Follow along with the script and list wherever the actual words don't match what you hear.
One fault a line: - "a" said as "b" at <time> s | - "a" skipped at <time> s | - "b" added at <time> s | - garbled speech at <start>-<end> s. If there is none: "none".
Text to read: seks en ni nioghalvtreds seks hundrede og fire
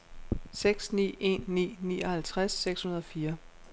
- "ni" added at 0.9 s